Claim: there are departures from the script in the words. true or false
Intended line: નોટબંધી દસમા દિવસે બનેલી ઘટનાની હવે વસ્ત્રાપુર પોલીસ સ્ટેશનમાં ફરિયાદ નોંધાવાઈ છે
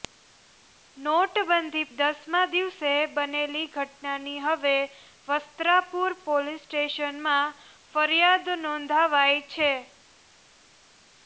false